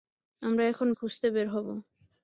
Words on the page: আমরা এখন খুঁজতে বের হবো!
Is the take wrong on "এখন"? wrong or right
right